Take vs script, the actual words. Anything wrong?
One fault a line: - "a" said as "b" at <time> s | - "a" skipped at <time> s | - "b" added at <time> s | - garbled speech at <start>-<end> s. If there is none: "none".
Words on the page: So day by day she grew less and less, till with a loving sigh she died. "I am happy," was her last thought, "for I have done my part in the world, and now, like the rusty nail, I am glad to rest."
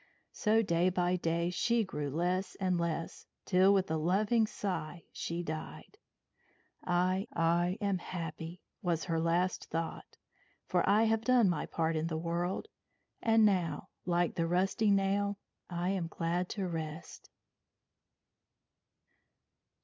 - "I" added at 7.3 s